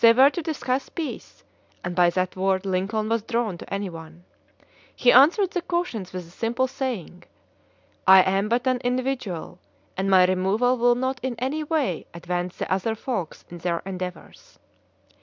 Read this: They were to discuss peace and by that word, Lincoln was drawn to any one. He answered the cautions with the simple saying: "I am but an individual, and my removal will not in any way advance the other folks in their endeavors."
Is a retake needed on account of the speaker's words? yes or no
no